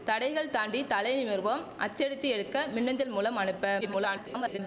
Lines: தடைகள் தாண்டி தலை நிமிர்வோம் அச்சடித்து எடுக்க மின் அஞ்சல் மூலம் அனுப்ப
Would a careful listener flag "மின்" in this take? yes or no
no